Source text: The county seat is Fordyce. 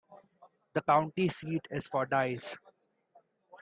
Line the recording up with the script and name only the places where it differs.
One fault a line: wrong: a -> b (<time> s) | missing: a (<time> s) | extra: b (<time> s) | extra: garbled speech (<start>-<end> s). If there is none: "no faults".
no faults